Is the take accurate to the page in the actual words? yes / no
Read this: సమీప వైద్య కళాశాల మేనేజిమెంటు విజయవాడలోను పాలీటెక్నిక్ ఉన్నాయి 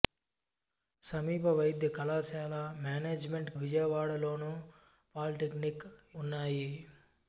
yes